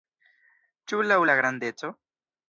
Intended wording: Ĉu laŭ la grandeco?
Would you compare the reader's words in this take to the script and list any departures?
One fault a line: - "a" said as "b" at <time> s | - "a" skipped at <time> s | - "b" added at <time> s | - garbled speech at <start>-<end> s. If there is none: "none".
none